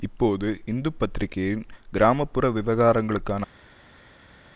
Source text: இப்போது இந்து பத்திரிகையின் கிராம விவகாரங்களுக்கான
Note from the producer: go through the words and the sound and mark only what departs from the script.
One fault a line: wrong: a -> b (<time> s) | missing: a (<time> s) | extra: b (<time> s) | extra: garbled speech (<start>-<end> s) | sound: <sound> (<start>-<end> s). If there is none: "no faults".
extra: புற (2.2 s)